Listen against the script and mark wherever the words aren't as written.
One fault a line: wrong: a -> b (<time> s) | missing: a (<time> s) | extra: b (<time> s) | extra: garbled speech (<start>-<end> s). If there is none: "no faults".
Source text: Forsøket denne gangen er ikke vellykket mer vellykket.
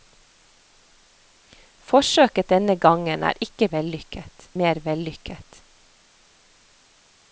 no faults